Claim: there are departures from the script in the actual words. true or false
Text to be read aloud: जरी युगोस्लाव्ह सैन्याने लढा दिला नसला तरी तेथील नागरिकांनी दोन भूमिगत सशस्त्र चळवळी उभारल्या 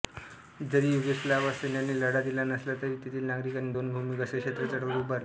false